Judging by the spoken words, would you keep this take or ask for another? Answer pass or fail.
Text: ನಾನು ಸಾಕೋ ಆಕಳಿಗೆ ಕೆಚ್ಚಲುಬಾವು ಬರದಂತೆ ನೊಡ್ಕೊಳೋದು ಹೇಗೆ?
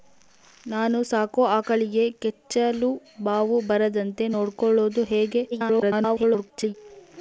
fail